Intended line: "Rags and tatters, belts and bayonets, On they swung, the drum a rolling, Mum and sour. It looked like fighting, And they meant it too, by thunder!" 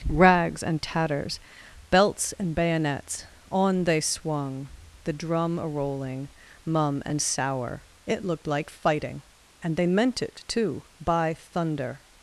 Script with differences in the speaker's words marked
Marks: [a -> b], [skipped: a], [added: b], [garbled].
"Rags and tatters, belts and bayonets, On they swung, the drum a rolling, Mum and sour. It looked like fighting, And they meant it too, by thunder!"